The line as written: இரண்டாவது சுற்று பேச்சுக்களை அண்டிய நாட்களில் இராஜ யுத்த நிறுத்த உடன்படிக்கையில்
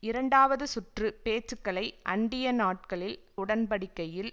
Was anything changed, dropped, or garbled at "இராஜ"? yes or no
yes